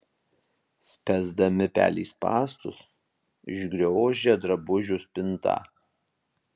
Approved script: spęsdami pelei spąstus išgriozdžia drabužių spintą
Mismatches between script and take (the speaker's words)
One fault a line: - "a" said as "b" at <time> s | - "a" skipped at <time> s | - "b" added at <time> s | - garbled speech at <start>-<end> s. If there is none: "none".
none